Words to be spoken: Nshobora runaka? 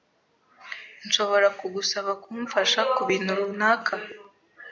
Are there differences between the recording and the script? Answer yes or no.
yes